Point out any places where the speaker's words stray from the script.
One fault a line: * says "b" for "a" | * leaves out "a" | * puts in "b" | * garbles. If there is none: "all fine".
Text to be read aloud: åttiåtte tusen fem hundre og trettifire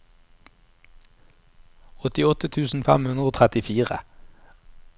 all fine